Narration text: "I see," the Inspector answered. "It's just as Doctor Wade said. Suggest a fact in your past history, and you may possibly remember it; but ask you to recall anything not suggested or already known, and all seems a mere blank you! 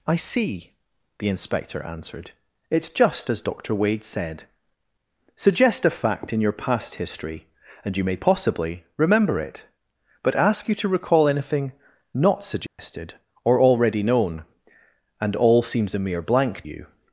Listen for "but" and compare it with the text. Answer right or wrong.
right